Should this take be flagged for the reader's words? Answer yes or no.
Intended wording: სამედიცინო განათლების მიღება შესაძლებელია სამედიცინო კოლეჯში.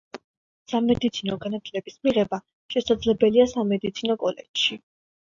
no